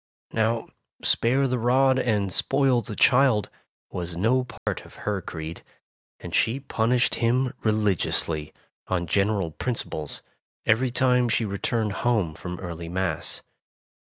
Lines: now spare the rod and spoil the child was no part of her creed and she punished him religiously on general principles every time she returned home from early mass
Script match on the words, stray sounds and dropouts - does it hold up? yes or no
no